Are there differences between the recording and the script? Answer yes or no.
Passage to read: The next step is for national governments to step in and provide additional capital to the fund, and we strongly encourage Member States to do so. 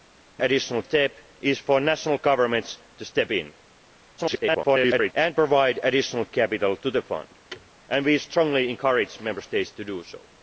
yes